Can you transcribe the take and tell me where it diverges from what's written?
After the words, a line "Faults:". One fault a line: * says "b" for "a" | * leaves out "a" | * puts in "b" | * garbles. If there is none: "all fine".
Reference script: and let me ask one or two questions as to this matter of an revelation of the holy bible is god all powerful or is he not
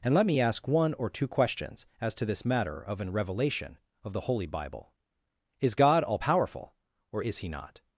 and let me ask one or two questions as to this matter of an revelation of the holy bible is god all powerful or is he not
Faults:
all fine